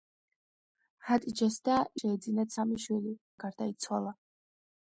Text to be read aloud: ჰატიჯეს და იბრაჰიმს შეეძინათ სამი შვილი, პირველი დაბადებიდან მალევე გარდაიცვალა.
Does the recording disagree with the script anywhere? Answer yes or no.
yes